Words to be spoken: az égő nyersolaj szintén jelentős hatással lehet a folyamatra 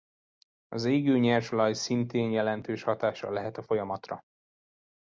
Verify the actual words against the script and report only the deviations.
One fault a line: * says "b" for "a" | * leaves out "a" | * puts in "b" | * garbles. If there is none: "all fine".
all fine